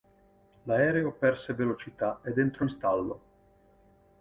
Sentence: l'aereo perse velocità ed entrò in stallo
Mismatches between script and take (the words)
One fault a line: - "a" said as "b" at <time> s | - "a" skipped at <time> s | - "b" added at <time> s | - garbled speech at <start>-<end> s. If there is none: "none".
none